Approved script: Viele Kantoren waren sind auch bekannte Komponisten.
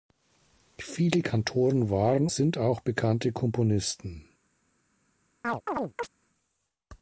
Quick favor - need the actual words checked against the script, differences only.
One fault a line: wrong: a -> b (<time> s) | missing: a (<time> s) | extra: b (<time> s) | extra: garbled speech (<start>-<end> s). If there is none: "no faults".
no faults